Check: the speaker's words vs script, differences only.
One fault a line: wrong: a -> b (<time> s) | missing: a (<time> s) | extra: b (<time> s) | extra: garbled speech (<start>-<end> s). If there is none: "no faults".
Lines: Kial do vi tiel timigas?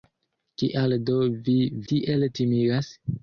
no faults